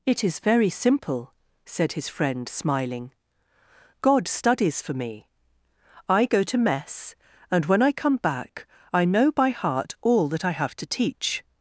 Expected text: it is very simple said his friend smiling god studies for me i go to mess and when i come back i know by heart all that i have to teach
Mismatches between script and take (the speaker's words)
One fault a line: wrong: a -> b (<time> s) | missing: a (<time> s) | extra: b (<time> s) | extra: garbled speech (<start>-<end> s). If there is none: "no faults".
no faults